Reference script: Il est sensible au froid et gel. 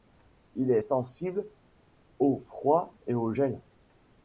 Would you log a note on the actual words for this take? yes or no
yes